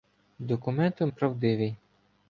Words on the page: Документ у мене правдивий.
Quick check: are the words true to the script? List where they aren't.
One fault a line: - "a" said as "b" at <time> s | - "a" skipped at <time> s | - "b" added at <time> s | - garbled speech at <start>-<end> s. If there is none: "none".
- "мене" skipped at 1.1 s